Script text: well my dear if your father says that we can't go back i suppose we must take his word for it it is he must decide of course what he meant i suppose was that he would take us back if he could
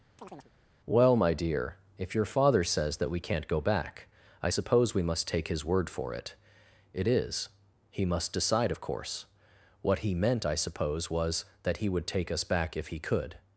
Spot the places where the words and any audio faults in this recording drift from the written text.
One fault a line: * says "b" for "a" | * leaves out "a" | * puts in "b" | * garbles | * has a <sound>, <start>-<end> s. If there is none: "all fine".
* has a chirp, 0.2-0.5 s